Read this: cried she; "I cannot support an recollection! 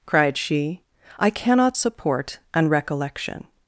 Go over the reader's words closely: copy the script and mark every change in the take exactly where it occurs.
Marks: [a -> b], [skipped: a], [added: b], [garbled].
cried she; "I cannot support an recollection!